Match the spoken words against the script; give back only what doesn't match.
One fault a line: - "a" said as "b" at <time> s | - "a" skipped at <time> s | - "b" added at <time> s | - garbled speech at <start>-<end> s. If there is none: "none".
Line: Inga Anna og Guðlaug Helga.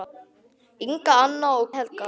- "Guðlaug" skipped at 1.7 s